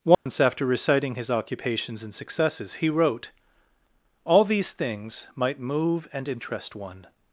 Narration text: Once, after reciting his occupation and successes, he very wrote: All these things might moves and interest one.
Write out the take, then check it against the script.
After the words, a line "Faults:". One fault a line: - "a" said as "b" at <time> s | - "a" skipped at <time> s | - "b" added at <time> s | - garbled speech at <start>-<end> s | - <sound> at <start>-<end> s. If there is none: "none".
Once, after reciting his occupations and successes, he wrote: All these things might move and interest one.
Faults:
- dropout at 0.1-0.3 s
- "occupation" said as "occupations" at 1.3 s
- "very" skipped at 2.9 s
- "moves" said as "move" at 5.6 s